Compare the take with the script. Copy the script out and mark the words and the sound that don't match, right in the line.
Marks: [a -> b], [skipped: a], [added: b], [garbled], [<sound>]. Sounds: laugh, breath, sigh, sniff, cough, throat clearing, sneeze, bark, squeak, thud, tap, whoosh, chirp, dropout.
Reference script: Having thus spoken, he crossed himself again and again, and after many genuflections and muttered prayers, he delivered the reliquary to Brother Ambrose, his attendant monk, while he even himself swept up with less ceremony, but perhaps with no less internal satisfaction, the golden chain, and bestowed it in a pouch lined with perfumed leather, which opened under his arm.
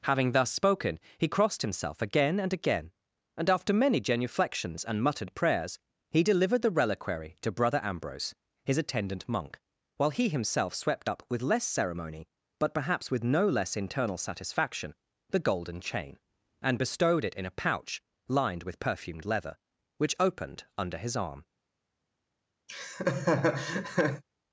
Having thus spoken, he crossed himself again and again, and after many genuflections and muttered prayers, he delivered the reliquary to Brother Ambrose, his attendant monk, while he [skipped: even] himself swept up with less ceremony, but perhaps with no less internal satisfaction, the golden chain, and bestowed it in a pouch lined with perfumed leather, which opened under his arm. [laugh]